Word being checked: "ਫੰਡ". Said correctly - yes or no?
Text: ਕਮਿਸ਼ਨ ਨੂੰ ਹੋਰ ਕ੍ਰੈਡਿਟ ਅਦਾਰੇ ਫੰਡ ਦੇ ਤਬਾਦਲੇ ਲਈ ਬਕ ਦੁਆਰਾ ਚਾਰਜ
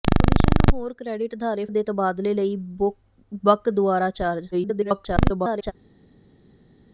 no